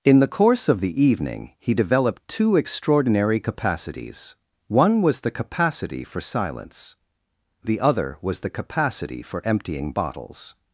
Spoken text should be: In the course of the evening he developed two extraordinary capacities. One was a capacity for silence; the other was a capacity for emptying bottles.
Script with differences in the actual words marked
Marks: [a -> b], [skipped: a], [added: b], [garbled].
In the course of the evening he developed two extraordinary capacities. One was [a -> the] capacity for silence; the other was [a -> the] capacity for emptying bottles.